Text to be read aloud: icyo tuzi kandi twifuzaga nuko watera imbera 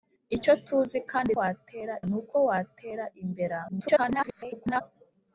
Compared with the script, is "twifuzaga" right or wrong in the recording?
wrong